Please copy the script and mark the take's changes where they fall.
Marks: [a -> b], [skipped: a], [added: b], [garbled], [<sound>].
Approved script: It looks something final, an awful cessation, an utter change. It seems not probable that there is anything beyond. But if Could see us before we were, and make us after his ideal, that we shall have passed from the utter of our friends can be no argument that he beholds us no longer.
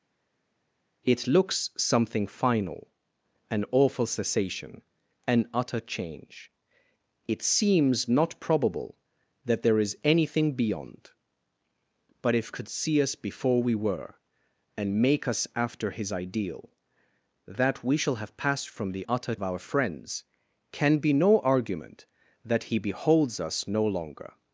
It looks something final, an awful cessation, an utter change. It seems not probable that there is anything beyond. But if Could see us before we were, and make us after his ideal, that we shall have passed from the utter of our friends can be no argument that he beholds us no longer.